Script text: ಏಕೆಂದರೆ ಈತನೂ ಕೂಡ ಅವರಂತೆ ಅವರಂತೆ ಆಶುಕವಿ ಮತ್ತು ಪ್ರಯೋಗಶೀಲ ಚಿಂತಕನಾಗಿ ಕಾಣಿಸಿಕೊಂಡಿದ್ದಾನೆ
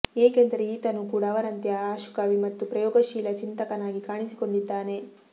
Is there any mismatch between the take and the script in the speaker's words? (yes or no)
yes